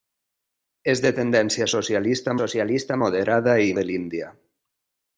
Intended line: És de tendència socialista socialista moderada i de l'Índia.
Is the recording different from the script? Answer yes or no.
no